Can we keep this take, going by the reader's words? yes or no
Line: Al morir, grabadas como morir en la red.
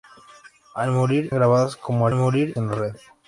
yes